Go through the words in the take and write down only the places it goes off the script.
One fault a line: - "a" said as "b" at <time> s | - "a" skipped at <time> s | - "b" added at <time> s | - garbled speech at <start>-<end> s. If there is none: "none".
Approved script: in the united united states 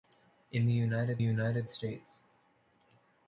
none